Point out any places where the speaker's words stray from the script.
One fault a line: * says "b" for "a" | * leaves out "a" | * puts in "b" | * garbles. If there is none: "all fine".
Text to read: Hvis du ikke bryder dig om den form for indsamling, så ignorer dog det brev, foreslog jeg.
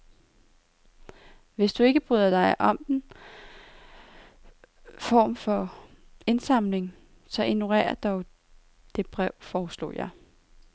all fine